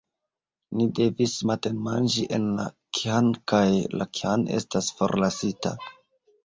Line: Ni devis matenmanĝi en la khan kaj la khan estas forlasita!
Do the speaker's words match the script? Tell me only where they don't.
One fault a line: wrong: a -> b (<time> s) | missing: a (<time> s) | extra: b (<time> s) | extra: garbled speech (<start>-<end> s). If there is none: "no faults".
no faults